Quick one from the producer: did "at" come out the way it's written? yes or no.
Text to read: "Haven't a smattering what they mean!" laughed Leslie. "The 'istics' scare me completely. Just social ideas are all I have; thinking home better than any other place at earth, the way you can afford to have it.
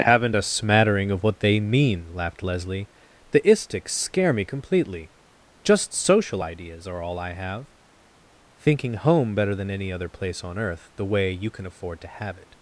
no